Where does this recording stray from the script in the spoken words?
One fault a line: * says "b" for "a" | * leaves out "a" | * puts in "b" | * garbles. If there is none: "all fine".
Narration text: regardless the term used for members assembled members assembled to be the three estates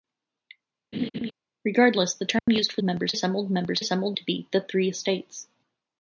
all fine